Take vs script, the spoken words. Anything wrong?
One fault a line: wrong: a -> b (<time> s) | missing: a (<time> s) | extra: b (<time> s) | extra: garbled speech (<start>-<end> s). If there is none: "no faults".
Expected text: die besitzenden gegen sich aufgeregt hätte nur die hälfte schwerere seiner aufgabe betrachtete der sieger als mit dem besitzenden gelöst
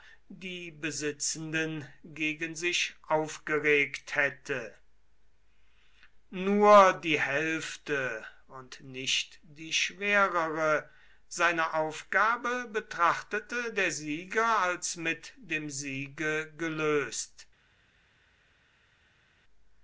extra: und nicht die (8.5 s)
wrong: besitzenden -> siege (15.7 s)